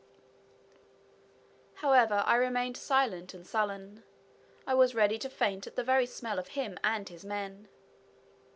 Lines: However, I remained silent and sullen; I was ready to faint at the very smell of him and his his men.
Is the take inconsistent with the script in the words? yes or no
yes